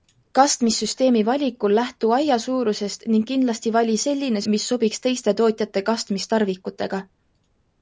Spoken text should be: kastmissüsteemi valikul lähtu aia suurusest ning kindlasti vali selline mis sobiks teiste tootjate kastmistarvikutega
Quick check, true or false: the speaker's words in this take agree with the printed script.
true